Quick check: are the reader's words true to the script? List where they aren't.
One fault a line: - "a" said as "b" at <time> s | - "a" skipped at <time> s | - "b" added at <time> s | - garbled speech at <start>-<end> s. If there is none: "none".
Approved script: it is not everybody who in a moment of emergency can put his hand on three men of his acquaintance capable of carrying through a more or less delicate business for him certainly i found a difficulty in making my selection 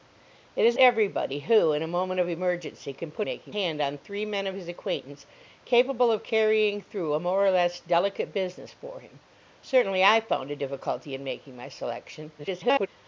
- "not" skipped at 0.8 s
- "his" said as "making" at 3.2 s
- garbled speech at 12.4-12.9 s